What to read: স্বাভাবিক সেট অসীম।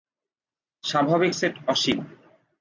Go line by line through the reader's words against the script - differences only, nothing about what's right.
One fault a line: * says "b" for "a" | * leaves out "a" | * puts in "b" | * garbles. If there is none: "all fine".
all fine